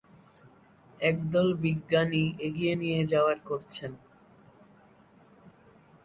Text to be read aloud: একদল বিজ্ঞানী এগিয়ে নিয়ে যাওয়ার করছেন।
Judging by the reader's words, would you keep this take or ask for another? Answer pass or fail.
pass